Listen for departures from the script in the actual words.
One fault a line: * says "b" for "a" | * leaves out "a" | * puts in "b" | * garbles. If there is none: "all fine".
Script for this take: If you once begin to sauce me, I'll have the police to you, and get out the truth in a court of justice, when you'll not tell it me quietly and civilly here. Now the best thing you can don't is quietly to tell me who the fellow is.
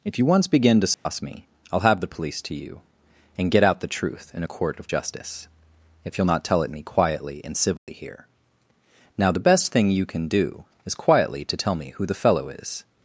* says "if" for "when"
* says "do" for "don't"